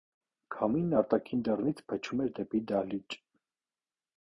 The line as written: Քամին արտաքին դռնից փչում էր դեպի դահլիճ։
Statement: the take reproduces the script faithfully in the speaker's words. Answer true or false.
true